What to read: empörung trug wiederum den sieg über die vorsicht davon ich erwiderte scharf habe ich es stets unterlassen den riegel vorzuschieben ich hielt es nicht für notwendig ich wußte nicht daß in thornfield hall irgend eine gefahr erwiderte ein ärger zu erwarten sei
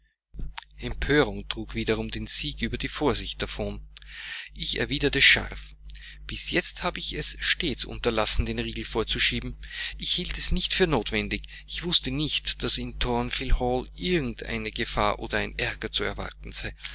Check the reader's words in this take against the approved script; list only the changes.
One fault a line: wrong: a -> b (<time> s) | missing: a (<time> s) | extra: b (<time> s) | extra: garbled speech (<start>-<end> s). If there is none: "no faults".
extra: bis jetzt (6.2 s)
wrong: erwiderte -> oder (15.2 s)